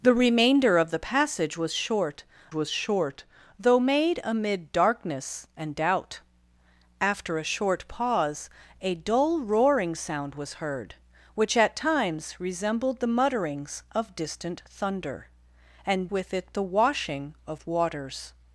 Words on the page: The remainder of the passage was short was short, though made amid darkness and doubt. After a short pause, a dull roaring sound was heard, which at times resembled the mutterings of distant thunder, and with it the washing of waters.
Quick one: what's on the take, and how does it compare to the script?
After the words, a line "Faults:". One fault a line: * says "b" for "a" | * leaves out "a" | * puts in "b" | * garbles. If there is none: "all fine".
The remainder of the passage was short was short, though made amid darkness and doubt. After a short pause, a dull roaring sound was heard, which at times resembled the mutterings of distant thunder, and with it the washing of waters.
Faults:
all fine